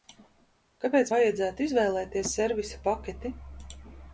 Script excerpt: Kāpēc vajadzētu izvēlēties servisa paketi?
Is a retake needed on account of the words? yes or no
no